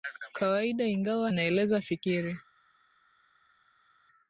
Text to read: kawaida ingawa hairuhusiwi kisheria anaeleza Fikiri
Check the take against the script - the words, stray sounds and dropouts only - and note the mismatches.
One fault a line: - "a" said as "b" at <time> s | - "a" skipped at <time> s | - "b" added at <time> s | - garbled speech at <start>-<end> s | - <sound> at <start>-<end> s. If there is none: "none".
- "hairuhusiwi kisheria" skipped at 1.3 s